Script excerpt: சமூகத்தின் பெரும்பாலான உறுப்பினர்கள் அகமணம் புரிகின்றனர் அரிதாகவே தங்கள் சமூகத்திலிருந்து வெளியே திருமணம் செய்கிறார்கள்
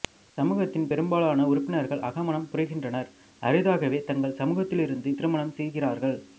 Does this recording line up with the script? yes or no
no